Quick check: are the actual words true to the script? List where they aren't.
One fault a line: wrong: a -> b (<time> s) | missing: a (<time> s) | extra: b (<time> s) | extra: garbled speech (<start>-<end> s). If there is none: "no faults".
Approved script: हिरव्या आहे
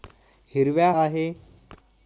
no faults